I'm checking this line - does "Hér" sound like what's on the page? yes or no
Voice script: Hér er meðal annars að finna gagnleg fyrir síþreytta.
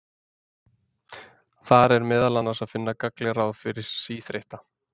no